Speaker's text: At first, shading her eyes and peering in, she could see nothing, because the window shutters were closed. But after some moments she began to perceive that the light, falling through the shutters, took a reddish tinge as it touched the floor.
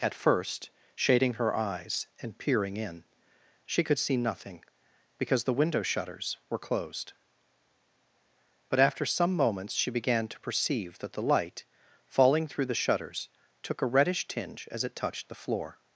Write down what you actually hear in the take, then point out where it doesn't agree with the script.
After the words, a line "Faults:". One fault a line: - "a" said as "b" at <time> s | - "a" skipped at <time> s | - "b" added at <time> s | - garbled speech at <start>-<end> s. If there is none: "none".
At first, shading her eyes and peering in, she could see nothing, because the window shutters were closed. But after some moments she began to perceive that the light, falling through the shutters, took a reddish tinge as it touched the floor.
Faults:
none